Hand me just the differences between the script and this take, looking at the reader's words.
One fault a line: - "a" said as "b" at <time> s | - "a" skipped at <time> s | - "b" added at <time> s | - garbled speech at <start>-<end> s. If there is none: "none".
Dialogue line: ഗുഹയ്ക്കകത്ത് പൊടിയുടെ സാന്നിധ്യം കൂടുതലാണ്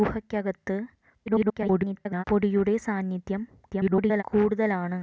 - garbled speech at 1.3-2.2 s
- garbled speech at 3.7-4.2 s